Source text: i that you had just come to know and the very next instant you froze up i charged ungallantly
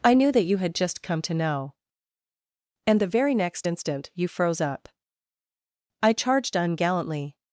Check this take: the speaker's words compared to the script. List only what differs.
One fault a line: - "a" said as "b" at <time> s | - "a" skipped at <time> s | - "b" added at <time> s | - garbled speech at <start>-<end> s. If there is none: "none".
- "knew" added at 0.1 s